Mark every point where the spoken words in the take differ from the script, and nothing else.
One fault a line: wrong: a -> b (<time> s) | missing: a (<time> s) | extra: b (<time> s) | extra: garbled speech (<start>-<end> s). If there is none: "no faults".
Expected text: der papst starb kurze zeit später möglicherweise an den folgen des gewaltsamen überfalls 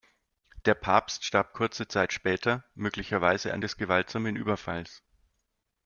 missing: den folgen (3.6 s)